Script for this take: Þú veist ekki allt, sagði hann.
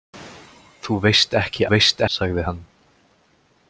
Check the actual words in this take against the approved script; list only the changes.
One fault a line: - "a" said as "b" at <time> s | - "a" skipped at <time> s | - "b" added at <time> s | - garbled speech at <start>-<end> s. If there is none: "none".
- "allt" said as "veist" at 1.7 s